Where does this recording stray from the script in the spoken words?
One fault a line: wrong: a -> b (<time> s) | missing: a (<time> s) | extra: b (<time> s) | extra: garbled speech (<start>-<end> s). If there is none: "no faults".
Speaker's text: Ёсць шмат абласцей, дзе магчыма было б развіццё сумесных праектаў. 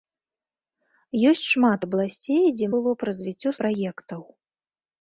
missing: магчыма (2.7 s)
missing: сумесных (3.5 s)